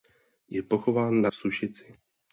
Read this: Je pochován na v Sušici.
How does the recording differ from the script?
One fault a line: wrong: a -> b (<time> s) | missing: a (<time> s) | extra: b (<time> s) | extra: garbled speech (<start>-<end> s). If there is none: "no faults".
no faults